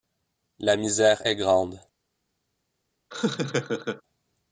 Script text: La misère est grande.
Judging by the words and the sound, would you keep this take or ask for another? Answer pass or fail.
fail